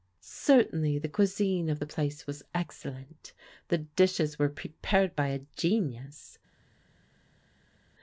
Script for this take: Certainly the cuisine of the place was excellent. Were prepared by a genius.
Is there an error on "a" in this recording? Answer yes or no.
no